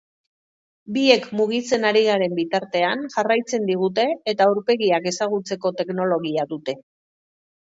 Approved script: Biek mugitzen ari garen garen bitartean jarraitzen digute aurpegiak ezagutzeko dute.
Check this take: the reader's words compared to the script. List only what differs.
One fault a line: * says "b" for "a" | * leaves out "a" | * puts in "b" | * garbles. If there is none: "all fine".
* leaves out "garen"
* puts in "eta"
* puts in "teknologia"